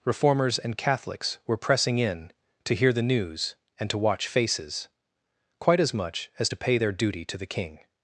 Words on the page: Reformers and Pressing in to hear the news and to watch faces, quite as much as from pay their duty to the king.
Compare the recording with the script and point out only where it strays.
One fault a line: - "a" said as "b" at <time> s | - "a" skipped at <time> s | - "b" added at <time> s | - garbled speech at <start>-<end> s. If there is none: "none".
- "Catholics were" added at 0.8 s
- "from" said as "to" at 6.5 s